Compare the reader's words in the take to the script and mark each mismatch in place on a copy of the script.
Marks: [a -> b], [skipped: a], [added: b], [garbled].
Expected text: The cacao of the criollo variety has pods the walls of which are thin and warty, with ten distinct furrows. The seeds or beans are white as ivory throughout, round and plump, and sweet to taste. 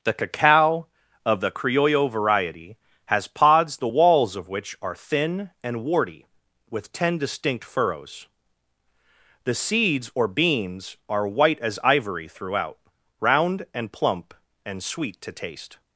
The cacao of the criollo variety has pods the walls of which are thin and warty, with ten distinct furrows. The seeds or beans are white as ivory throughout, round and plump, and sweet to taste.